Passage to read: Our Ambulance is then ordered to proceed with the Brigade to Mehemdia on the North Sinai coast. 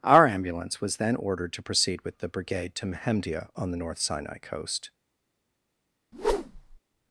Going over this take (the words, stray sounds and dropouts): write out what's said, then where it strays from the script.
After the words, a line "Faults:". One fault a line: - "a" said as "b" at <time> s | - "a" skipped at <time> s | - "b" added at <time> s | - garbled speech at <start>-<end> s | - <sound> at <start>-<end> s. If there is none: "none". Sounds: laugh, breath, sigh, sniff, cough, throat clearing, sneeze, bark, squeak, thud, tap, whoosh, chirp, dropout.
Our Ambulance was then ordered to proceed with the Brigade to Mehemdia on the North Sinai coast.
Faults:
- "is" said as "was" at 0.8 s
- whoosh at 6.1-6.8 s